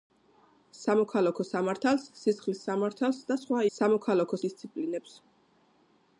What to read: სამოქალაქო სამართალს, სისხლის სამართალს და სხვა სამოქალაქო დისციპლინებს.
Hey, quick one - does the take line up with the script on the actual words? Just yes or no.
yes